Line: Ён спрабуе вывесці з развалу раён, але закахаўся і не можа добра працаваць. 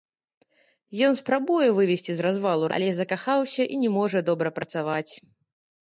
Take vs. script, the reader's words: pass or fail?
fail